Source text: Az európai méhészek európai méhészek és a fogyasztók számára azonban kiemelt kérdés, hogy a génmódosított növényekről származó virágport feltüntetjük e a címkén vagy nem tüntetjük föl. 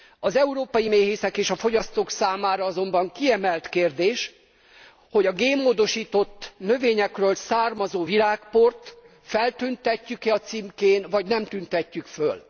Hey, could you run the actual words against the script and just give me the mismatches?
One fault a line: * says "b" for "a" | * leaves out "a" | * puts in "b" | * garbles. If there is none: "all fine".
* leaves out "európai méhészek"